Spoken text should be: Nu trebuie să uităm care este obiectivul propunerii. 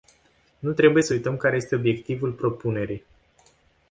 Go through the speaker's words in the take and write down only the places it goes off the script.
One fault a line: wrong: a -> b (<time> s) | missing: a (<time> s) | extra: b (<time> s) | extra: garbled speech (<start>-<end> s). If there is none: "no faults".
no faults